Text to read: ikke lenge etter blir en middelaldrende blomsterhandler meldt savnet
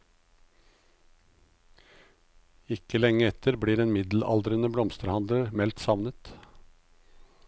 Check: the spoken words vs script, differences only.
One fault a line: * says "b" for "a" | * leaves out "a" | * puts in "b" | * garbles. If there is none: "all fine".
all fine